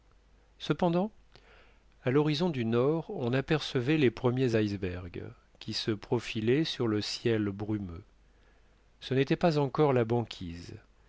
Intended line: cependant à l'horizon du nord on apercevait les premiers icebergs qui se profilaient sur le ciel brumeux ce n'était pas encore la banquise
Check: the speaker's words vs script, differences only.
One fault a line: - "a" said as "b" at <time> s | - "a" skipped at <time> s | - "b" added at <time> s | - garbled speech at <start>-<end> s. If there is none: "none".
none